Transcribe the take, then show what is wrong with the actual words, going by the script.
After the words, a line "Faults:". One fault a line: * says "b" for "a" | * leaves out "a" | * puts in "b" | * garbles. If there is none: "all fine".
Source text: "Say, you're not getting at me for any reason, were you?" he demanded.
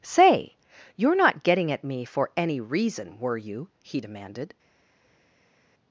"Say, you're not getting at me for any reason, were you?" he demanded.
Faults:
all fine